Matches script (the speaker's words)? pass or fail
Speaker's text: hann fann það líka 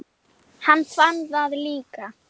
pass